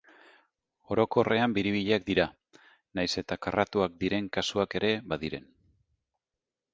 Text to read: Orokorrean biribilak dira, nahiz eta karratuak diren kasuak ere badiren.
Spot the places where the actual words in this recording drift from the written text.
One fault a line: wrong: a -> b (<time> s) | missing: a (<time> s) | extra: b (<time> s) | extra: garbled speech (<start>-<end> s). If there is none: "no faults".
no faults